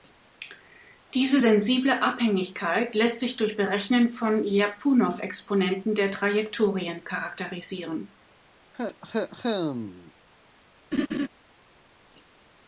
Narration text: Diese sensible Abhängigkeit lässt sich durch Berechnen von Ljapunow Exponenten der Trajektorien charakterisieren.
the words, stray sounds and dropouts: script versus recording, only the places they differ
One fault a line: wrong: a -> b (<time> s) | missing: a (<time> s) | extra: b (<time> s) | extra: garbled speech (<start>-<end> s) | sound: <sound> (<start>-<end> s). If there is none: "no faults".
sound: cough (8.7-10.1 s)
sound: laugh (10.9-11.3 s)